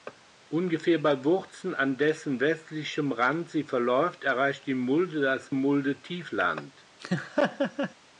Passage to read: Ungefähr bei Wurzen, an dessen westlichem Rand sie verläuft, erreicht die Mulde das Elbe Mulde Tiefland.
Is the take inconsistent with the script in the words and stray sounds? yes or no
yes